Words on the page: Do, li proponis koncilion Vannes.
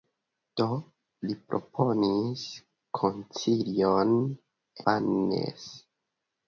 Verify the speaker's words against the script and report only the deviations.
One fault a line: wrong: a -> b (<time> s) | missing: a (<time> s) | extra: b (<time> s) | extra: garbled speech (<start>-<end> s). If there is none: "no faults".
no faults